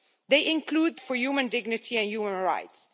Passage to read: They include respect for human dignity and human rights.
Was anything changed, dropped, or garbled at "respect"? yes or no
yes